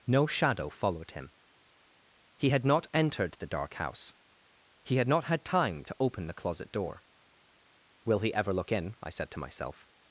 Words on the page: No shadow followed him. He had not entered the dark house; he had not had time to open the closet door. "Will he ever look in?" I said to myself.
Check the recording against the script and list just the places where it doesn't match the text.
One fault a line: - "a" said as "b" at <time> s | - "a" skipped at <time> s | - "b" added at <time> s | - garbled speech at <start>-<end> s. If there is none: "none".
none